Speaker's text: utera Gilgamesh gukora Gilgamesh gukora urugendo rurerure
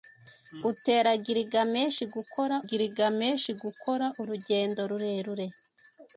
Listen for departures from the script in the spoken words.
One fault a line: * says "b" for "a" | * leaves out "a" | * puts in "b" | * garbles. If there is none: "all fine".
all fine